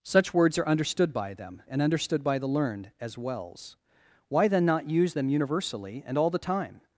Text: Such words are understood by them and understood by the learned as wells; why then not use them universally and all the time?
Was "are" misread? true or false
false